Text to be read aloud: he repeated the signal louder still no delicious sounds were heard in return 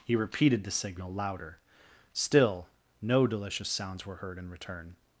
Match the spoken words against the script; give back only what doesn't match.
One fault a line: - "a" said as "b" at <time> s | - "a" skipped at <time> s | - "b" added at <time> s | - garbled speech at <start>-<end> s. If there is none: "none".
none